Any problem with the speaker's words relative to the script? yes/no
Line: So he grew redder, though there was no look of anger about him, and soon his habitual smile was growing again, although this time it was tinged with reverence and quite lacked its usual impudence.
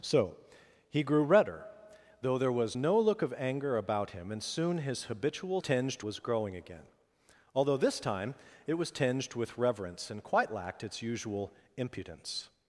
yes